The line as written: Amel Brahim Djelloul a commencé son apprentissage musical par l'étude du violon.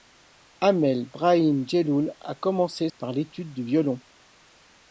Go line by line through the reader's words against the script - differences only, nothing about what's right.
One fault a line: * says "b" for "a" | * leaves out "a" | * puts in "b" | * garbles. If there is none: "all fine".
* leaves out "son apprentissage musical"